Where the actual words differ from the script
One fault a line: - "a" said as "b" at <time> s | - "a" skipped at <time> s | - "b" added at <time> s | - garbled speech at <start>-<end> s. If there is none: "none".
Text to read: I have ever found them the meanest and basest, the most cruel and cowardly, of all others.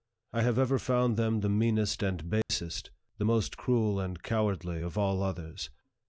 none